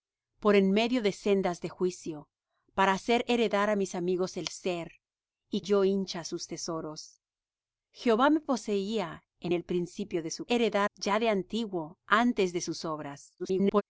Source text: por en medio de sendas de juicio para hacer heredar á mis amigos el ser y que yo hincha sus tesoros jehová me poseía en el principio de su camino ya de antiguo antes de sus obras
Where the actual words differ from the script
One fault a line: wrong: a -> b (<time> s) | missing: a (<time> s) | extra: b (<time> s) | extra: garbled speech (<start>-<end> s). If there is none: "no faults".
missing: que (5.6 s)
wrong: camino -> heredar (10.5 s)
extra: garbled speech (13.4-13.8 s)